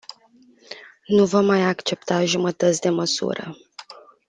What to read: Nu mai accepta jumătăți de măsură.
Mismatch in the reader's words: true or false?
true